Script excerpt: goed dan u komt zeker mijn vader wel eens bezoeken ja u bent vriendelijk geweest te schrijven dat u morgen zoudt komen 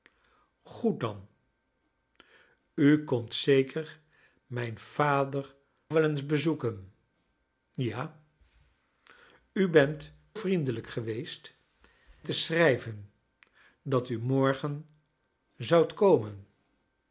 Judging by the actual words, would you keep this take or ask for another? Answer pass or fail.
pass